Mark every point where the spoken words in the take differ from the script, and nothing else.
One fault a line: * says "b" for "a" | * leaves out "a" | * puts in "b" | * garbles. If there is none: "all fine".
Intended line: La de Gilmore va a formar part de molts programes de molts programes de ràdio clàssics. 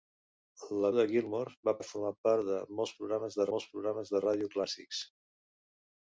all fine